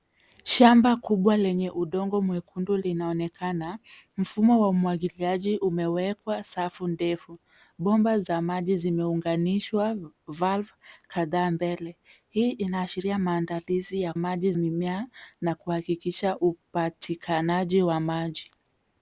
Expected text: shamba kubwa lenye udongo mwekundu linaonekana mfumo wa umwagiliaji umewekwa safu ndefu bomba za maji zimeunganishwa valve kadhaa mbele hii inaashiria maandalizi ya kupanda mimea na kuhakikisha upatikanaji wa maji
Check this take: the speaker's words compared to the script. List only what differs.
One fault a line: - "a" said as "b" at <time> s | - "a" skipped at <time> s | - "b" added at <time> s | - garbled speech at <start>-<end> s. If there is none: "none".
- "kupanda" said as "maji" at 14.2 s